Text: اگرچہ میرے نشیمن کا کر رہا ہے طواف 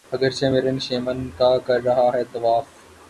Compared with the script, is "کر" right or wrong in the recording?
right